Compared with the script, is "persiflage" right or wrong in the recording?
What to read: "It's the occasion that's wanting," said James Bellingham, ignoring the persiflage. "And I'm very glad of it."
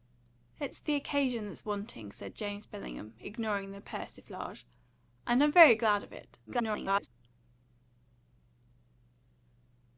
right